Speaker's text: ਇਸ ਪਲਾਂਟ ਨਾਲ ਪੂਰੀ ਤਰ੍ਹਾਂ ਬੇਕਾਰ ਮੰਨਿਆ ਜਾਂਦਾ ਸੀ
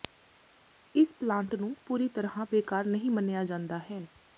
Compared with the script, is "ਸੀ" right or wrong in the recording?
wrong